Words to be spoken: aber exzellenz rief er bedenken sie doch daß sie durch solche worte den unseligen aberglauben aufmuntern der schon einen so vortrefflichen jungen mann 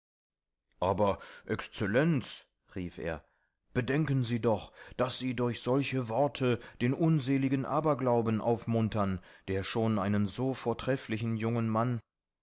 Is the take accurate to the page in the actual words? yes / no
yes